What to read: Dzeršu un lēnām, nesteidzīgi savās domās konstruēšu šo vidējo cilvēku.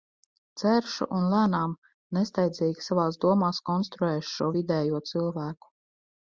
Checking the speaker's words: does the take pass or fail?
pass